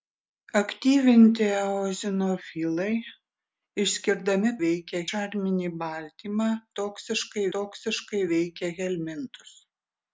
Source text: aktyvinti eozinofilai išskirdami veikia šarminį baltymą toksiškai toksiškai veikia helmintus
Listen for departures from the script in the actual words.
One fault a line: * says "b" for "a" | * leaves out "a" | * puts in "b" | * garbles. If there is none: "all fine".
all fine